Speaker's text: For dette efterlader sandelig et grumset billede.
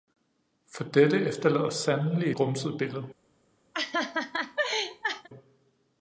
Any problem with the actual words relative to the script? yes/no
yes